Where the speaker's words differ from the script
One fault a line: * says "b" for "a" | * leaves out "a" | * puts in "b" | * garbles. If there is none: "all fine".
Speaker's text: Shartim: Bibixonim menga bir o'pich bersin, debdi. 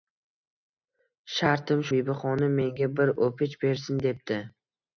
all fine